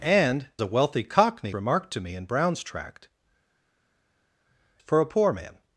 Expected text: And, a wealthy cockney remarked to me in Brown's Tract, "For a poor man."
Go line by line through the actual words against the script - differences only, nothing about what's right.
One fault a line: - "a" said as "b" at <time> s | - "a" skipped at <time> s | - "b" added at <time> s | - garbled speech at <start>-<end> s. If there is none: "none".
none